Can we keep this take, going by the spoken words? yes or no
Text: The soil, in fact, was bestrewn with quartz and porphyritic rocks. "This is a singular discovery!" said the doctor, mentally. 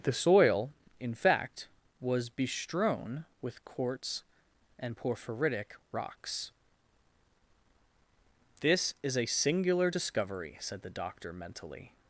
yes